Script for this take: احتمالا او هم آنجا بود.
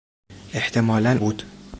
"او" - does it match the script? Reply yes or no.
no